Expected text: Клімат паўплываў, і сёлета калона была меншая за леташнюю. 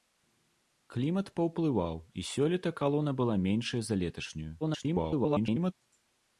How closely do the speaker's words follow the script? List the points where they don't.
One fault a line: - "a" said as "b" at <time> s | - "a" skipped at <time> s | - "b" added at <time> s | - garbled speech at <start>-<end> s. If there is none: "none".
- garbled speech at 4.6-5.7 s